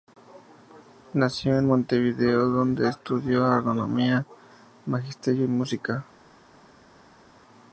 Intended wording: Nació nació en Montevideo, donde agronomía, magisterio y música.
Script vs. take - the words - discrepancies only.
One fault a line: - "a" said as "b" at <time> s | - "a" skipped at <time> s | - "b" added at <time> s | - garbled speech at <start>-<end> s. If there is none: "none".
- "nació" skipped at 1.6 s
- "estudió" added at 2.9 s